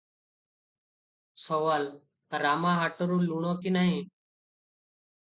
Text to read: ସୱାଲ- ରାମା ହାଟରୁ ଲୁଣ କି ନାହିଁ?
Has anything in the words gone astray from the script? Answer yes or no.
no